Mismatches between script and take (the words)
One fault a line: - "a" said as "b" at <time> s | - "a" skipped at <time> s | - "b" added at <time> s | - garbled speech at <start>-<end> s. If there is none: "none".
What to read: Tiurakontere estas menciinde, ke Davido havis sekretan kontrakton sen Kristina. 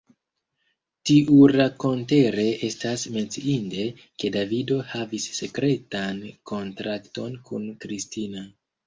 - "sen" said as "kun" at 7.5 s